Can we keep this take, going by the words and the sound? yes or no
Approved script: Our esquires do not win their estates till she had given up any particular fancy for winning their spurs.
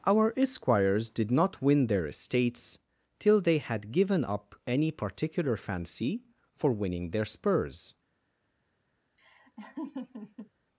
no